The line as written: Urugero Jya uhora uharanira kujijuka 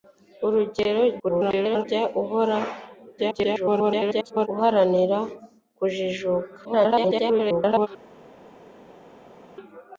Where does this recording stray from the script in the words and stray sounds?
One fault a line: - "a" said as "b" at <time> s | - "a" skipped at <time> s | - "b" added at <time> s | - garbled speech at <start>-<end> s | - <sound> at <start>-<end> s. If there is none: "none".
- garbled speech at 1.2-1.8 s
- garbled speech at 3.2-4.5 s
- garbled speech at 6.6-7.9 s